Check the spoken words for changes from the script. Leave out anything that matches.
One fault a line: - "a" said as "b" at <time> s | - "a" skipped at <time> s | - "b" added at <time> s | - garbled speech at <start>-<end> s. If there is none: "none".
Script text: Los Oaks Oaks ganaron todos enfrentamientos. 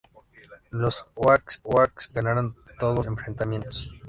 none